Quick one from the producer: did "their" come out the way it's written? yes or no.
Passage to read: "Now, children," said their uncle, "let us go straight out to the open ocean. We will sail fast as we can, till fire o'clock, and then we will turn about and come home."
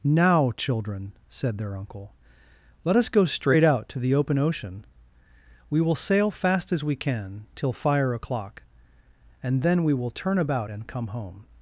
yes